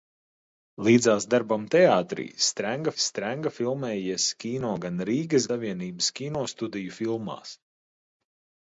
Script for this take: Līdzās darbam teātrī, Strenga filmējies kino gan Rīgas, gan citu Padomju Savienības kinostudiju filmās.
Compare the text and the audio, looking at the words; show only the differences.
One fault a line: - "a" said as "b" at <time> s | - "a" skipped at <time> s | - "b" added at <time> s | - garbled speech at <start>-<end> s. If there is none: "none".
- "Strenga" added at 3.0 s
- "gan citu Padomju" skipped at 5.5 s